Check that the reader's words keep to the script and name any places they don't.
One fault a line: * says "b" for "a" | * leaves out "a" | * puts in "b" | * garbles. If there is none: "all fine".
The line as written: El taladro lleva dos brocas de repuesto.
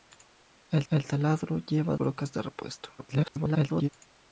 * puts in "el"
* leaves out "dos"
* garbles